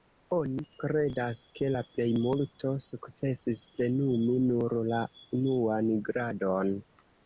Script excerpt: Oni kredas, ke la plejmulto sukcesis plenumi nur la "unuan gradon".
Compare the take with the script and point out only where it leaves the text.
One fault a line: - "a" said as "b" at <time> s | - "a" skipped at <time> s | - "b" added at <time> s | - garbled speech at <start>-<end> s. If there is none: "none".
none